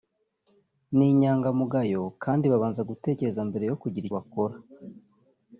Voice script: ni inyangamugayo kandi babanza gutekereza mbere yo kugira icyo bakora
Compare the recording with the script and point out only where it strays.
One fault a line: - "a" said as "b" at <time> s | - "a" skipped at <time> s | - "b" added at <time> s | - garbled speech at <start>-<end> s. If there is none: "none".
- "icyo" skipped at 4.0 s